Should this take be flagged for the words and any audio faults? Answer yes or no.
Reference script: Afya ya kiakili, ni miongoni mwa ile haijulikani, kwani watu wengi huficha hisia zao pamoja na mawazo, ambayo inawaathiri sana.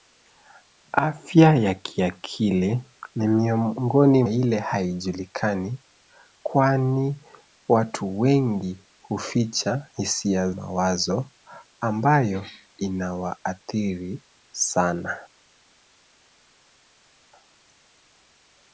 yes